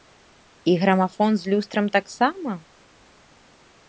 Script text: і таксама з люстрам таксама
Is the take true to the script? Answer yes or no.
no